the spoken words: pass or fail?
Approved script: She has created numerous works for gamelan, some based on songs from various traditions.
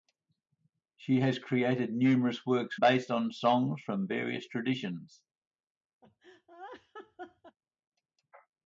fail